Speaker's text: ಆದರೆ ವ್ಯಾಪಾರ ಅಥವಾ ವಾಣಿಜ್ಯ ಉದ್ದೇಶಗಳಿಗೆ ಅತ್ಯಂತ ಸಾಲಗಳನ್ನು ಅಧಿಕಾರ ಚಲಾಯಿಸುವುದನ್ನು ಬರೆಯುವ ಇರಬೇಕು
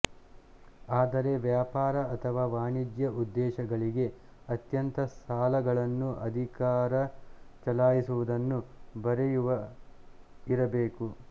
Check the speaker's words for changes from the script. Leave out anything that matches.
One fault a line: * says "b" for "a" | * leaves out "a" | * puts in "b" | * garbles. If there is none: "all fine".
all fine